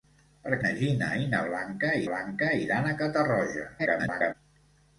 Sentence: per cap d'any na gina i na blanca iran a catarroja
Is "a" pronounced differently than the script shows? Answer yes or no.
no